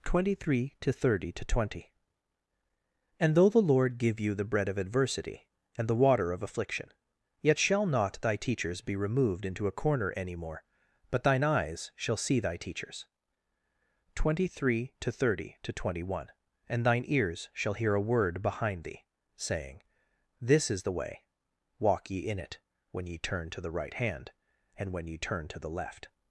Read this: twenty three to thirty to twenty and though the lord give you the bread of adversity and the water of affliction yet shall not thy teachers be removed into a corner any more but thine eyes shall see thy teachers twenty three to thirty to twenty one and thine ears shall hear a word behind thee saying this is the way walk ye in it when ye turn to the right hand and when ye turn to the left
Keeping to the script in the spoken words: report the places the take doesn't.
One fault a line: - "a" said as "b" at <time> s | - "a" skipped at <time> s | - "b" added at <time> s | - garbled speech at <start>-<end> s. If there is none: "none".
none